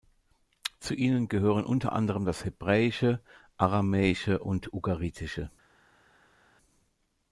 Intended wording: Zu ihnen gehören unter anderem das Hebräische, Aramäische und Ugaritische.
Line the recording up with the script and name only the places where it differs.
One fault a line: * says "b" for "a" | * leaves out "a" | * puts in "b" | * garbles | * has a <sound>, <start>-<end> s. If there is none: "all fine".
all fine